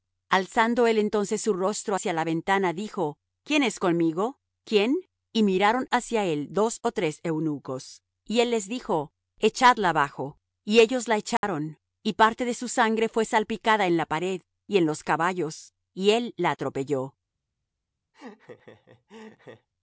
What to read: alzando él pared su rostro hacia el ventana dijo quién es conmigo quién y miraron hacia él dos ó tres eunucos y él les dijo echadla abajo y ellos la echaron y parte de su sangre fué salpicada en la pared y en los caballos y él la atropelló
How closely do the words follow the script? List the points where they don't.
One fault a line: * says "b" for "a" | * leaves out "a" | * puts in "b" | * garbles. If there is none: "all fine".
* says "entonces" for "pared"
* says "la" for "el"